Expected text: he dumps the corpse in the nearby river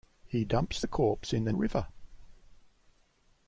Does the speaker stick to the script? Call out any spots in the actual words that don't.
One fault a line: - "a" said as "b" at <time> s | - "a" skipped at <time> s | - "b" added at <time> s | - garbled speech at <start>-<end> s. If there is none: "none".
- "nearby" skipped at 1.5 s